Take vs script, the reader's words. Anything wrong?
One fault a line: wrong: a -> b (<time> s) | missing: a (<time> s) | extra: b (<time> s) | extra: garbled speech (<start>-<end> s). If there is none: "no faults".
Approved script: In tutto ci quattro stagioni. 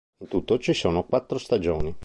extra: sono (0.7 s)